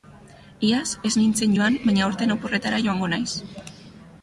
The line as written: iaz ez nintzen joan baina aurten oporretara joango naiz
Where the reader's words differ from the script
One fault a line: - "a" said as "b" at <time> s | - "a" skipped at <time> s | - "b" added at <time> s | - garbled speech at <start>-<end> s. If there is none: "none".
none